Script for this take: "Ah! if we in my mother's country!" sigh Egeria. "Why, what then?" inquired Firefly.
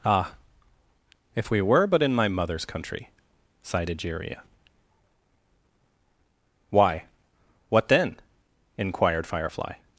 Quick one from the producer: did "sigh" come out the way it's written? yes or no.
no